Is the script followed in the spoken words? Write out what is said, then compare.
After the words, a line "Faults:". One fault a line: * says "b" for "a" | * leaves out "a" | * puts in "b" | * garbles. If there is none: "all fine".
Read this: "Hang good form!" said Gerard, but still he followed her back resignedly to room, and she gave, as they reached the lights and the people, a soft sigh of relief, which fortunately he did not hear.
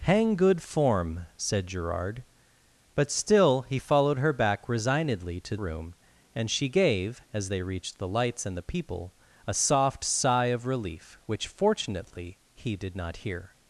"Hang good form!" said Gerard, but still he followed her back resignedly to room, and she gave, as they reached the lights and the people, a soft sigh of relief, which fortunately he did not hear.
Faults:
all fine